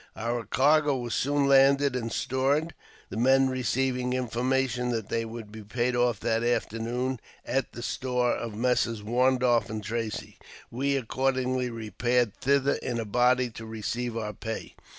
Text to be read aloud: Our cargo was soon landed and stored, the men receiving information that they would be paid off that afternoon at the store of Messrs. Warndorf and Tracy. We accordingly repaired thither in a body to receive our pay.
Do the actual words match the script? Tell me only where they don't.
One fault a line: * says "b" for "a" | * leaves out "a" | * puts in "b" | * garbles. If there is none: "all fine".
all fine